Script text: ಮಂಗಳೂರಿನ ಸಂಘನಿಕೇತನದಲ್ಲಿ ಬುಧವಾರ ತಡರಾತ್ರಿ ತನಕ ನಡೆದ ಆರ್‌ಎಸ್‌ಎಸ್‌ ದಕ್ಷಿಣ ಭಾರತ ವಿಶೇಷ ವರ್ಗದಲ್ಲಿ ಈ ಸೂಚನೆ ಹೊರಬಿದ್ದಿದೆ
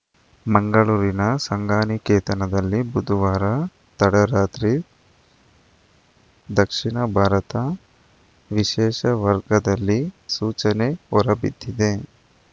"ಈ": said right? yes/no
no